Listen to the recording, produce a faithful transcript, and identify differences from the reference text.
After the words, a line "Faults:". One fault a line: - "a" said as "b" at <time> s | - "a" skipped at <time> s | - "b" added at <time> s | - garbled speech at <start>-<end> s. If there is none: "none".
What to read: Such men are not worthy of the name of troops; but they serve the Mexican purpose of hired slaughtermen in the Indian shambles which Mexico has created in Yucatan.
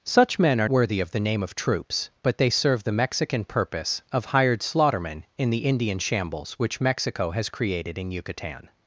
Such men are worthy of the name of troops; but they serve the Mexican purpose of hired slaughtermen in the Indian shambles which Mexico has created in Yucatan.
Faults:
- "not" skipped at 0.7 s